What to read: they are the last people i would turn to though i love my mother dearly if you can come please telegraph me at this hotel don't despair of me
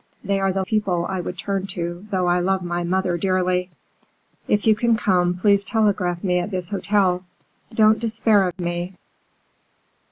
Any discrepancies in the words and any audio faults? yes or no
yes